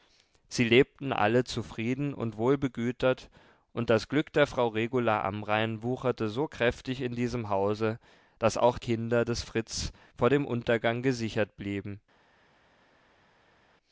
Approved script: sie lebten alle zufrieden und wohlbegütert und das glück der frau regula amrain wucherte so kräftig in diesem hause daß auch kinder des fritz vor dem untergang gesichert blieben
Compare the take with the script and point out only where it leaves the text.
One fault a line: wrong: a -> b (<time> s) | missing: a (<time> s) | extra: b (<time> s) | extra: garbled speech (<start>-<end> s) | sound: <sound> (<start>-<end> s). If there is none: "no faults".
no faults